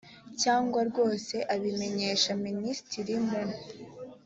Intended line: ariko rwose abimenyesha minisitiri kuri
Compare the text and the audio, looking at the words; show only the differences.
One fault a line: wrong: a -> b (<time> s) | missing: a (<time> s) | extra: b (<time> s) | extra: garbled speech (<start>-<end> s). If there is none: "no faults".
wrong: ariko -> cyangwa (0.4 s)
wrong: kuri -> mu (3.3 s)